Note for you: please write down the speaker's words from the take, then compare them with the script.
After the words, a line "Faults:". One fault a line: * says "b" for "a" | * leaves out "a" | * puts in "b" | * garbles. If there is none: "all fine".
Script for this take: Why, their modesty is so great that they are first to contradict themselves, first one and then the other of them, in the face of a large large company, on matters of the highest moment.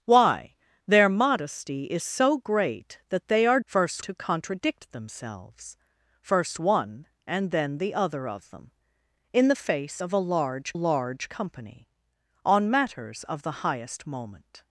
Why, their modesty is so great that they are first to contradict themselves, first one and then the other of them, in the face of a large large company, on matters of the highest moment.
Faults:
all fine